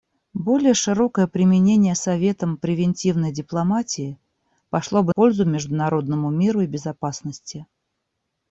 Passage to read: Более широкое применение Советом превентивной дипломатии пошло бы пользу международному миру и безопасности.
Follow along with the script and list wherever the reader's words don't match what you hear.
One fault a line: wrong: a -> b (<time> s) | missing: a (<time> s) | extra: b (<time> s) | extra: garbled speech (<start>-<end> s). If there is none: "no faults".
no faults